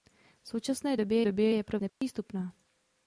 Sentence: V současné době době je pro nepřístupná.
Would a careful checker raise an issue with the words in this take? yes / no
no